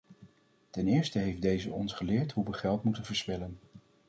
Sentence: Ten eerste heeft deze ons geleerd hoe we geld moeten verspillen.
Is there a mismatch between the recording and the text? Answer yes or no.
no